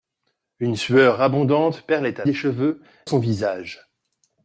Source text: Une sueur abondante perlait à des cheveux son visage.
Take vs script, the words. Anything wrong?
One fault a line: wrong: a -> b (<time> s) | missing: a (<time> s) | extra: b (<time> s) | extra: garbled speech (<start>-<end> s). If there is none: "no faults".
no faults